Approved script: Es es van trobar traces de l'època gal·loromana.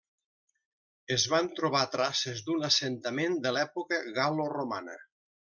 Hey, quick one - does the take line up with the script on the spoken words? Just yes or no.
no